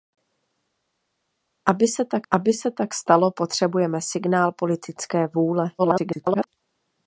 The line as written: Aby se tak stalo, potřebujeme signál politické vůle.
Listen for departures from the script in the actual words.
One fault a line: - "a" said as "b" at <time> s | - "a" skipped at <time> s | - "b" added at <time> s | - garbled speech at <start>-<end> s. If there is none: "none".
- "aby se tak" added at 2.3 s
- garbled speech at 5.8-6.5 s